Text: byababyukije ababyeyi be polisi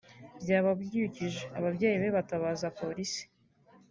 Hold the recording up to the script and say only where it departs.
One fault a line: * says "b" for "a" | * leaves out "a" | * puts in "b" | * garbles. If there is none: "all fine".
* puts in "batabaza"